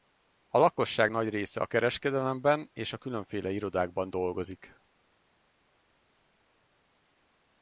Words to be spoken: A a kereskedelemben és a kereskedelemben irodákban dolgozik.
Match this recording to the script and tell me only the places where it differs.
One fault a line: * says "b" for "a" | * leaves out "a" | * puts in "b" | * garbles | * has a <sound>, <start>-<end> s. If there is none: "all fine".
* puts in "lakosság nagy része"
* says "különféle" for "kereskedelemben"